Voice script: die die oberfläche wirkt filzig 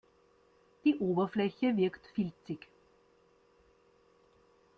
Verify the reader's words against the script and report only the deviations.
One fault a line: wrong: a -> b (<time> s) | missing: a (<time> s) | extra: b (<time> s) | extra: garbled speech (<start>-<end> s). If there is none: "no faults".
missing: die (1.0 s)